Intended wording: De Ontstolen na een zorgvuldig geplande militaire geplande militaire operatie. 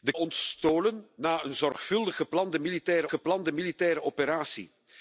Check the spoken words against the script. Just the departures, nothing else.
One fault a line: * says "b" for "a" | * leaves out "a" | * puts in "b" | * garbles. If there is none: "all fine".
all fine